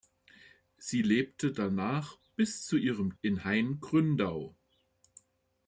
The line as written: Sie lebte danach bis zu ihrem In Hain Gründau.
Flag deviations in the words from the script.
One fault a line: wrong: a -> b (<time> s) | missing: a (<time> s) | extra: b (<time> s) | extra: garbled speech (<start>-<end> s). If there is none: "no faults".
no faults